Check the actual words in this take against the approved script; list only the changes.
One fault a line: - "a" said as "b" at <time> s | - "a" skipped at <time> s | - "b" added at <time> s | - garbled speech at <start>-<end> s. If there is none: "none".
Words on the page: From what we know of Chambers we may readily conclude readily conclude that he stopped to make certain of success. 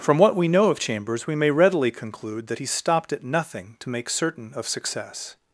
- "readily conclude" skipped at 2.5 s
- "at nothing" added at 3.1 s